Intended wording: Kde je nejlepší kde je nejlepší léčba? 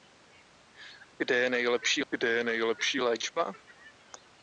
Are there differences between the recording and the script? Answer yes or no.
no